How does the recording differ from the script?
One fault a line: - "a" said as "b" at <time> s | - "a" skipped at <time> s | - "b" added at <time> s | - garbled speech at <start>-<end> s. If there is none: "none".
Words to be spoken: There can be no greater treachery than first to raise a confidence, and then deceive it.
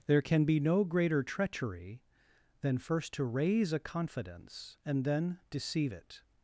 none